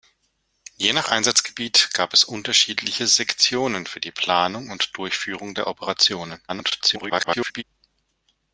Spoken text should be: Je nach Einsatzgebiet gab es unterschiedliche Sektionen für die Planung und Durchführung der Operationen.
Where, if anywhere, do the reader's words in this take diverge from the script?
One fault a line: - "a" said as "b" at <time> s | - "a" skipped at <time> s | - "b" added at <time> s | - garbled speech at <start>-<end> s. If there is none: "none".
- garbled speech at 6.5-7.6 s